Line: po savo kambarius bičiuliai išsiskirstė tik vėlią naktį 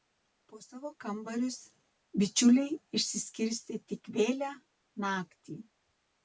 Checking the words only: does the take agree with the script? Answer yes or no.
yes